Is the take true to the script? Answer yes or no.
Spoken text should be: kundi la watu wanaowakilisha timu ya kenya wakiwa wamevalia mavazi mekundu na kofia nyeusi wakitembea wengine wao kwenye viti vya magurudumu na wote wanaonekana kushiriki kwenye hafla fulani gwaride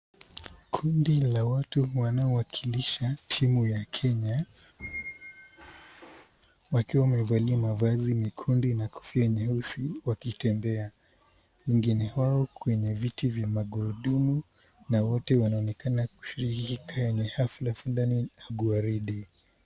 yes